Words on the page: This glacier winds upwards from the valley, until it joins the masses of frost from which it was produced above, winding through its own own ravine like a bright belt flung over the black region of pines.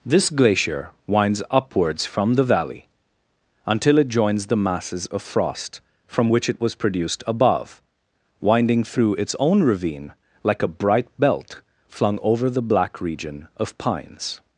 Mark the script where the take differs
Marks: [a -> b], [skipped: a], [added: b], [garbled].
This glacier winds upwards from the valley, until it joins the masses of frost from which it was produced above, winding through its own [skipped: own] ravine like a bright belt flung over the black region of pines.